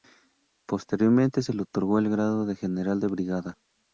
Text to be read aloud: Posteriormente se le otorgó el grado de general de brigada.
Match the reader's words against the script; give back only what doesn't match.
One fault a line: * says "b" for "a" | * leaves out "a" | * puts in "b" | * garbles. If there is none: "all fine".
all fine